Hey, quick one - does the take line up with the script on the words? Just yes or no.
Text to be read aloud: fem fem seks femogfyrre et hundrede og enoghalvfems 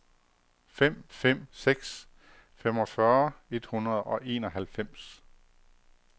yes